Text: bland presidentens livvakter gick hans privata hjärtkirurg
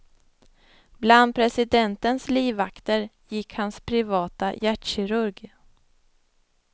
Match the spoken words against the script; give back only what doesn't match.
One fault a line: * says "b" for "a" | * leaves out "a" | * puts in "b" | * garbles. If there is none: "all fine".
all fine